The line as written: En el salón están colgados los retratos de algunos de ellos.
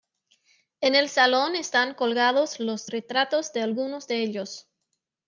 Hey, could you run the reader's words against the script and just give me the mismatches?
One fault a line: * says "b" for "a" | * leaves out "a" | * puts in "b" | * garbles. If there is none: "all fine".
all fine